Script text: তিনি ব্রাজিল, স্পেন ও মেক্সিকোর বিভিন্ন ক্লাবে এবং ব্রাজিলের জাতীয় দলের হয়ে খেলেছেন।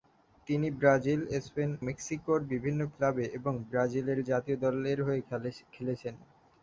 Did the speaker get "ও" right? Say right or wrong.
wrong